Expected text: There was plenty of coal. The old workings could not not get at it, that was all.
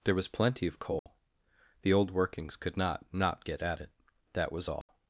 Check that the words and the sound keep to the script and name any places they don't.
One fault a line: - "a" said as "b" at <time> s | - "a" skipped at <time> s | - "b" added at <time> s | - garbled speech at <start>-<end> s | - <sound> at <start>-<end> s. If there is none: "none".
- dropout at 1.0-1.1 s
- dropout at 4.8-4.9 s